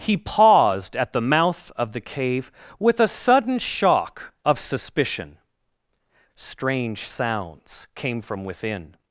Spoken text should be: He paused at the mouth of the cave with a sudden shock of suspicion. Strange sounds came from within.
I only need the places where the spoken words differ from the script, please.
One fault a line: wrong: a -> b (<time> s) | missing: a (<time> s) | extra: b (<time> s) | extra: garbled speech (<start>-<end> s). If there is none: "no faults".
no faults